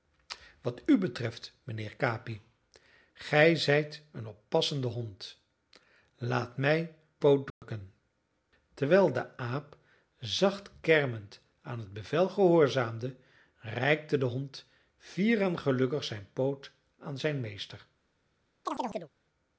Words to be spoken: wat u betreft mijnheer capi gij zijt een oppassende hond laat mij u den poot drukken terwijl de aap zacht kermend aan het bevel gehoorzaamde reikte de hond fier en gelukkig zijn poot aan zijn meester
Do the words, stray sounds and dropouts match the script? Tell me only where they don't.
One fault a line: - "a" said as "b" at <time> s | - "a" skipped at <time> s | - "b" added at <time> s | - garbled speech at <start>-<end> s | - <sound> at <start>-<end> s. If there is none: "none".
- "u den" skipped at 7.0 s
- dropout at 7.5-7.6 s
- chirp at 18.7-19.1 s